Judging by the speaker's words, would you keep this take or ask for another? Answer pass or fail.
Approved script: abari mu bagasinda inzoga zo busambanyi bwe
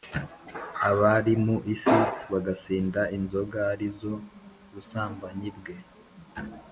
fail